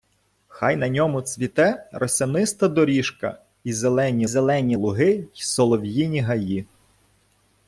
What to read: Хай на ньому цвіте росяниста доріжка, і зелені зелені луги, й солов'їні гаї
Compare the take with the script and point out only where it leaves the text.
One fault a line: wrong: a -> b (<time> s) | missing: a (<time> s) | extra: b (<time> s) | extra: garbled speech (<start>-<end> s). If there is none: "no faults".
no faults